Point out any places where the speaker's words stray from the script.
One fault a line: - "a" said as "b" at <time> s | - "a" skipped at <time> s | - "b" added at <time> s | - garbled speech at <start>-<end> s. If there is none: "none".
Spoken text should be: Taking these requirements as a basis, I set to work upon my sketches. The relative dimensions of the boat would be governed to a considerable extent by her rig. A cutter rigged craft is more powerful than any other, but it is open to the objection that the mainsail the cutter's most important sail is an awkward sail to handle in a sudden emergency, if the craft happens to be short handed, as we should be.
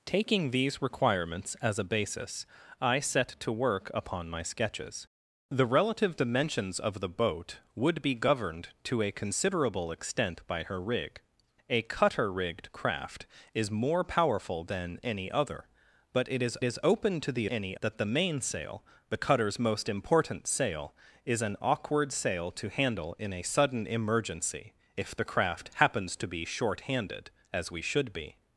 - "is" added at 16.6 s
- "objection" said as "any" at 17.5 s